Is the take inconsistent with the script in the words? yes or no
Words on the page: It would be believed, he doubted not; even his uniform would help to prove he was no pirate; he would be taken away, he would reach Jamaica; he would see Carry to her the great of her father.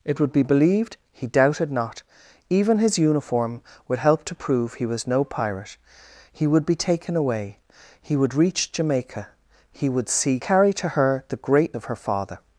no